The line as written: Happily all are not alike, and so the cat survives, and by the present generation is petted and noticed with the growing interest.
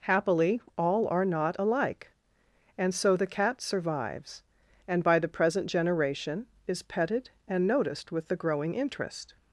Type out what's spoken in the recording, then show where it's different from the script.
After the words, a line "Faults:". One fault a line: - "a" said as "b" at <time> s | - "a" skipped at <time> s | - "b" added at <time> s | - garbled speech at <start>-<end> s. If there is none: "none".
Happily all are not alike, and so the cat survives, and by the present generation is petted and noticed with the growing interest.
Faults:
none